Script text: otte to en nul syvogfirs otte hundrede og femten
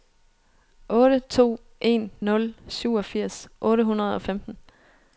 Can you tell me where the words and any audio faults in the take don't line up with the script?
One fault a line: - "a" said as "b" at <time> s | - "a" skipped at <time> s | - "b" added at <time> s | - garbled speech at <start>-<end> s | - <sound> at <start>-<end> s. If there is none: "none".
none